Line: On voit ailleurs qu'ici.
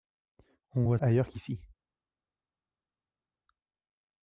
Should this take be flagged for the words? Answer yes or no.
no